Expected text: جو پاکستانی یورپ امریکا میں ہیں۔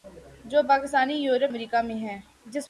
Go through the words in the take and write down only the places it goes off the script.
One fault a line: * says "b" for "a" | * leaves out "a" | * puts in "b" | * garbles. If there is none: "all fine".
all fine